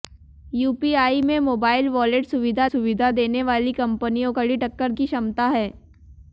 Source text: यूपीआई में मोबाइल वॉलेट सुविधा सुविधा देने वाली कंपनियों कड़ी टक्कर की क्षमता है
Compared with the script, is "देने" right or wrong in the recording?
right